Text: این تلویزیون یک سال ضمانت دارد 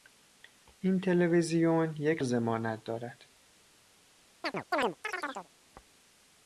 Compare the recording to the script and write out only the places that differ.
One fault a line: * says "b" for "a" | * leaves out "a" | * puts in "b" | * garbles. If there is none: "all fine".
* leaves out "سال"